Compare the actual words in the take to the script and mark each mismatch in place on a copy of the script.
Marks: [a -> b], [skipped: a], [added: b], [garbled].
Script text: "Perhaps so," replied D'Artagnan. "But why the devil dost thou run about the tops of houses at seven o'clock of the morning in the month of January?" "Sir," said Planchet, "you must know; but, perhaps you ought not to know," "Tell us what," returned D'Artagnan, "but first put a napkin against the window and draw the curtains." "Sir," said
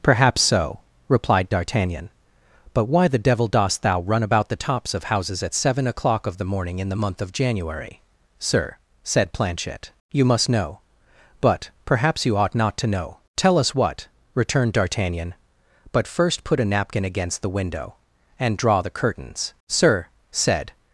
"Perhaps so," replied D'Artagnan. "But why the devil dost thou run about the tops of houses at seven o'clock of the morning in the month of January?" "Sir," said Planchet, "you must know; but, perhaps you ought not to know," "Tell us what," returned D'Artagnan, "but first put a napkin against the window and draw the curtains." "Sir," said